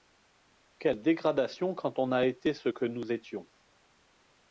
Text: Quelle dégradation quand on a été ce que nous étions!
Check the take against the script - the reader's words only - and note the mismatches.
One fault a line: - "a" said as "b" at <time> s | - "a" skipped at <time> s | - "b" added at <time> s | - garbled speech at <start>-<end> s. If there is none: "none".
none